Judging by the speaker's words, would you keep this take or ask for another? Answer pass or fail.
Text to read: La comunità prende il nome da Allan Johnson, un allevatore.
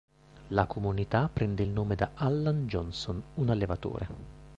pass